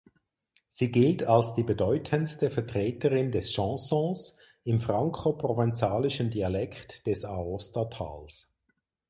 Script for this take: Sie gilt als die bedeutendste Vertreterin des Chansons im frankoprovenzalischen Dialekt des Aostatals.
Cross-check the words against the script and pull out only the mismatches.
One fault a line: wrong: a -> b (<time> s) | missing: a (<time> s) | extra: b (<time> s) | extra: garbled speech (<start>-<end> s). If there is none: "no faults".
no faults